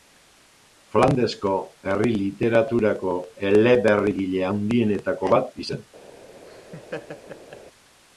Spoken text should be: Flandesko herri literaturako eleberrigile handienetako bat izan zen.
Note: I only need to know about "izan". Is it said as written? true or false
false